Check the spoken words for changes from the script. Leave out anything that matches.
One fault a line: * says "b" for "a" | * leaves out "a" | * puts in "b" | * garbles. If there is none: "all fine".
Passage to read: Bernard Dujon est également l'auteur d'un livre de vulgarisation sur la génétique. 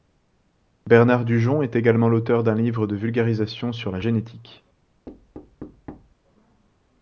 all fine